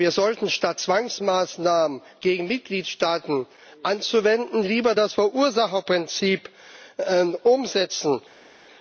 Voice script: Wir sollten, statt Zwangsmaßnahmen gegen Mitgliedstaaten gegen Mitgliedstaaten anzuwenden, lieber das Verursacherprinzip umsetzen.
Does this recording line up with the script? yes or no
no